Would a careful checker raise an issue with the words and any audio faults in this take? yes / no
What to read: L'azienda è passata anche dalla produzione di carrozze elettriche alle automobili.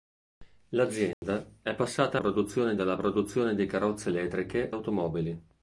yes